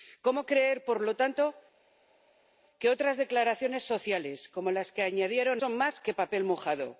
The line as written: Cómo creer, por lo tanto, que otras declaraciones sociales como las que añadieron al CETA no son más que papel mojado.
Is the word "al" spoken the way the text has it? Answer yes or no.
no